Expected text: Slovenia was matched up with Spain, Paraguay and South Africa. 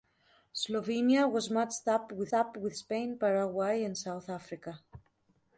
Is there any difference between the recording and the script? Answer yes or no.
yes